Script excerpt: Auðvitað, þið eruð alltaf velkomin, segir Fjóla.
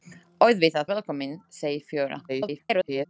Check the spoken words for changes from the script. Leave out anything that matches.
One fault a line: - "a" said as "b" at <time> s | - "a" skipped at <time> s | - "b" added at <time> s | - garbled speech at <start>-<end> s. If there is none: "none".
- "þið eruð alltaf" skipped at 0.9 s
- garbled speech at 2.3-3.1 s